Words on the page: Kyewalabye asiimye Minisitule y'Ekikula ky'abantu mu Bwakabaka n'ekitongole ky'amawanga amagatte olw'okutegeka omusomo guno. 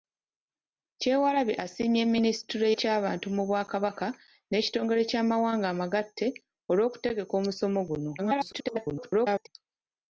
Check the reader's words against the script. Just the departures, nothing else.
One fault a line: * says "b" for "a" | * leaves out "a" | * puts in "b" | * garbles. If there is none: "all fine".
* leaves out "y'Ekikula"
* garbles